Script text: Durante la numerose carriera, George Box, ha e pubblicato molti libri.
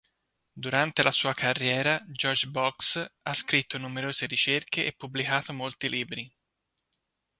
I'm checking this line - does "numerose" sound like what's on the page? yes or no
no